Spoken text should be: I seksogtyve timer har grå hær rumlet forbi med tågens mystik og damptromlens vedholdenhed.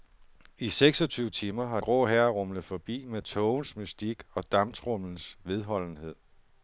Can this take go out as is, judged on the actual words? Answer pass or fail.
pass